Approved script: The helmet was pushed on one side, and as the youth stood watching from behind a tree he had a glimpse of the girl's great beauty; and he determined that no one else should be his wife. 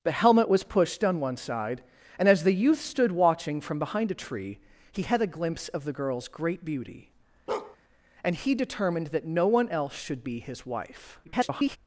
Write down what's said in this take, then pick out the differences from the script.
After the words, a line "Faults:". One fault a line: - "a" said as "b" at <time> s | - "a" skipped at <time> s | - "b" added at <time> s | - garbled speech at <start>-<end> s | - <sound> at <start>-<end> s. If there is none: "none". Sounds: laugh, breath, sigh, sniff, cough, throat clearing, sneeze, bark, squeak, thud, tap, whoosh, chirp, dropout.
The helmet was pushed on one side, and as the youth stood watching from behind a tree he had a glimpse of the girl's great beauty; and he determined that no one else should be his wife. [garbled]
Faults:
- bark at 7.5-7.8 s
- garbled speech at 11.2-11.8 s